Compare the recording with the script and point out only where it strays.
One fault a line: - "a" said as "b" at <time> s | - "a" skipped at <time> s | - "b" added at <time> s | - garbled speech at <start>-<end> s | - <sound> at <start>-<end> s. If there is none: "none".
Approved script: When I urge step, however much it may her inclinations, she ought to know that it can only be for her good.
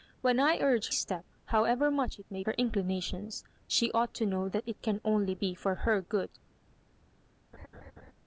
- laugh at 7.5-8.1 s